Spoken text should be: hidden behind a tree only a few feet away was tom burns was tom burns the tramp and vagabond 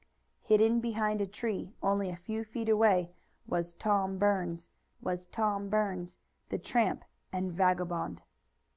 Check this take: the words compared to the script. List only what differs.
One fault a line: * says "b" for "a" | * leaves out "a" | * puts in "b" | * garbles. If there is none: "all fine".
all fine